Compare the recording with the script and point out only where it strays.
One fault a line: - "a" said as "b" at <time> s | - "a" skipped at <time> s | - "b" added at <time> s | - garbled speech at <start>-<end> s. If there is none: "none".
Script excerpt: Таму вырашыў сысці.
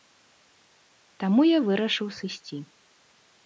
- "я" added at 1.5 s